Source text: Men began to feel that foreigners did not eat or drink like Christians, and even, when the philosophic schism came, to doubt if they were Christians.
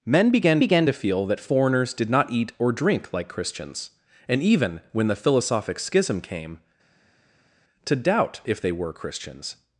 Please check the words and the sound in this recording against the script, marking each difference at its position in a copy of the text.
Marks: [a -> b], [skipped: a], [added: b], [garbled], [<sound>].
Men began [added: began] to feel that foreigners did not eat or drink like Christians, and even, when the philosophic schism came, to doubt if they were Christians.